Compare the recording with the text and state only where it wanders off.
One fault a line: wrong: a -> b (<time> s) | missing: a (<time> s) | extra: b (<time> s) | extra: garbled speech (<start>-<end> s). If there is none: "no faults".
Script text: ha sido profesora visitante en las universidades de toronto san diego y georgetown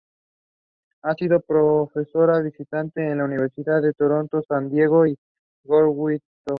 no faults